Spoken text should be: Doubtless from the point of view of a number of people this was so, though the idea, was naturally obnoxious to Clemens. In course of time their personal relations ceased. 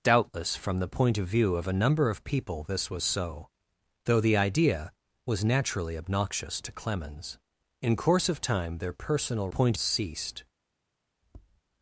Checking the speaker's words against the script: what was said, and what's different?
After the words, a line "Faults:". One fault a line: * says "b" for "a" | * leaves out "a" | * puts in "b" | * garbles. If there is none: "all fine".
Doubtless from the point of view of a number of people this was so, though the idea, was naturally obnoxious to Clemens. In course of time their personal point ceased.
Faults:
* says "point" for "relations"